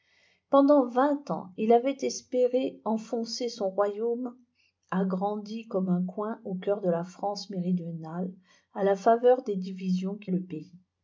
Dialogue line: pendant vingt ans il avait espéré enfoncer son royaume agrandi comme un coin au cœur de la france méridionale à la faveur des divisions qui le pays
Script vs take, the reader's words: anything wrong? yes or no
no